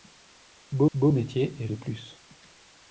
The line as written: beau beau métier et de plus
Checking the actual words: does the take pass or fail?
pass